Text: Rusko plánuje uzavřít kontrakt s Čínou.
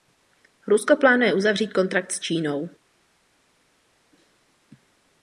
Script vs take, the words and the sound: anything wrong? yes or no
no